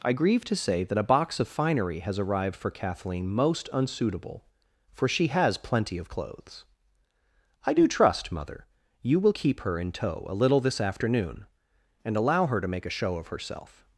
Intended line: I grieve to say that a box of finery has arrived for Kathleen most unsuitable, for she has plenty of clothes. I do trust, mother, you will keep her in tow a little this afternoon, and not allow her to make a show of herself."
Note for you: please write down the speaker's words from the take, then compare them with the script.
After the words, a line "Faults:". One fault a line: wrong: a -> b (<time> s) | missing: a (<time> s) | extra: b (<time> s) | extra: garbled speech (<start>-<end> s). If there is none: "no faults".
I grieve to say that a box of finery has arrived for Kathleen most unsuitable, for she has plenty of clothes. I do trust, mother, you will keep her in tow a little this afternoon, and allow her to make a show of herself."
Faults:
missing: not (12.2 s)